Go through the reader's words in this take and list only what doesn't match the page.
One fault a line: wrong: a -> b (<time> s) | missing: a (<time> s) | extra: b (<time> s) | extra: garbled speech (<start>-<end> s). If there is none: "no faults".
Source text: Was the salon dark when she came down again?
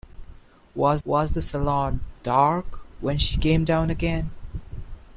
extra: was (1.0 s)